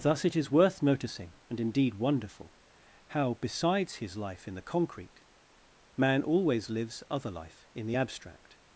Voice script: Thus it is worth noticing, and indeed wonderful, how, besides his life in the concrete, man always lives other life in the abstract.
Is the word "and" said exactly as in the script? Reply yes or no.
yes